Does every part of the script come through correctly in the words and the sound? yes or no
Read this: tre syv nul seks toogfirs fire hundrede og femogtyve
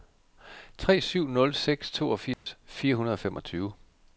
no